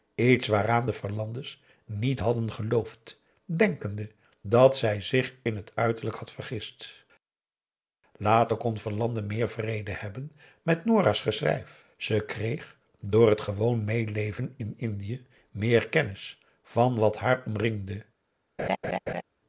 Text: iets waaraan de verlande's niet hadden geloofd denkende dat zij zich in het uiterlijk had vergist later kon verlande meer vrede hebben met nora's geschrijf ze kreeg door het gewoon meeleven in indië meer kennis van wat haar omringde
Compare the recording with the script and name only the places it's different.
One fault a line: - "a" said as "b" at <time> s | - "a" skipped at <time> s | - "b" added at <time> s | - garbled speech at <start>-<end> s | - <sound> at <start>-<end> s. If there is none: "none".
- laugh at 18.6-19.2 s